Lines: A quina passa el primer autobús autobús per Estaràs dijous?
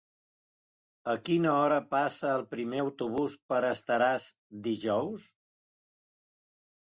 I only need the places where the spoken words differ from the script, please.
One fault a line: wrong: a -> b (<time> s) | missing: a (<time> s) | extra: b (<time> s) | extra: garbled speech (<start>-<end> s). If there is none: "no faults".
extra: hora (1.6 s)
missing: autobús (3.3 s)